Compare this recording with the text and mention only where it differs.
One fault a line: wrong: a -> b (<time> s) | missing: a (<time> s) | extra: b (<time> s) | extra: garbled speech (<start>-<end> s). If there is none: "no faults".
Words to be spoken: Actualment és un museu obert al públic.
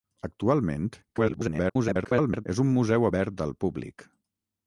extra: garbled speech (1.1-2.5 s)